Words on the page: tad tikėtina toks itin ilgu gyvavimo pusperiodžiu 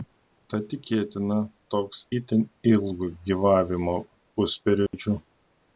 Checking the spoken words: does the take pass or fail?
pass